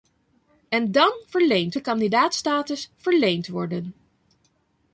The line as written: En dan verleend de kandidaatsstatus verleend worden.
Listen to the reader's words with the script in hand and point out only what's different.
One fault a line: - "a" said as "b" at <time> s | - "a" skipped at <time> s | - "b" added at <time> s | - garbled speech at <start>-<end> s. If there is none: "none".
none